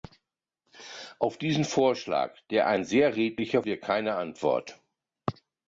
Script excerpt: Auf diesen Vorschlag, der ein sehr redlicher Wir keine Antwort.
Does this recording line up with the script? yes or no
yes